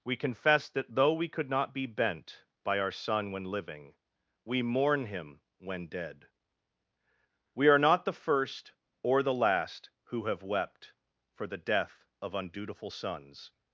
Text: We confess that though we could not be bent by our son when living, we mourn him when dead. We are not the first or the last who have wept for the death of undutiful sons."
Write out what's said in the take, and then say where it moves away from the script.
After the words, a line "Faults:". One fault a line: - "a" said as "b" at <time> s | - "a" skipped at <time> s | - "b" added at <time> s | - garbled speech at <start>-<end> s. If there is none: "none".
We confess that though we could not be bent by our son when living, we mourn him when dead. We are not the first or the last who have wept for the death of undutiful sons."
Faults:
none